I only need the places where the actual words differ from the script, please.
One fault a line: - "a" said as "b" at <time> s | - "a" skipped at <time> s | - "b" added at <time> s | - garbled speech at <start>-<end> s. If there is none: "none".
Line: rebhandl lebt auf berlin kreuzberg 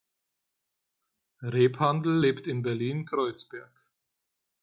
- "auf" said as "in" at 2.5 s